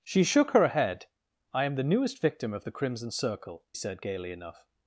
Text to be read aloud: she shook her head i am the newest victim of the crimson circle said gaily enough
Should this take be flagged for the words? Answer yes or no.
no